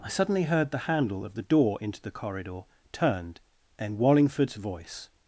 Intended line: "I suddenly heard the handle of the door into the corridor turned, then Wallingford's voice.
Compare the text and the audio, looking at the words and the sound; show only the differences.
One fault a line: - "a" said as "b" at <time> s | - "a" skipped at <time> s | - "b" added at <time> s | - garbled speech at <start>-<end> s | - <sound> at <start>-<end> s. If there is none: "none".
- "then" said as "and" at 3.8 s